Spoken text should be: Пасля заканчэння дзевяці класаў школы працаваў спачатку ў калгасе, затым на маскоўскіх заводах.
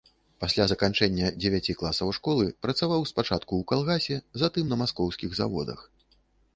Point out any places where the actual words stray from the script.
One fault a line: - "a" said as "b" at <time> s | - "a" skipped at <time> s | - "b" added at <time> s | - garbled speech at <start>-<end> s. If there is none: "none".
none